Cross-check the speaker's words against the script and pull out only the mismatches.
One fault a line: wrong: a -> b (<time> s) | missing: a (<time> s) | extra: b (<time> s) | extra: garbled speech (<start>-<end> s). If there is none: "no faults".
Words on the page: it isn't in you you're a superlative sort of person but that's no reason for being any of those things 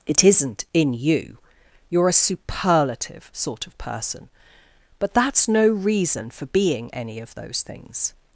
no faults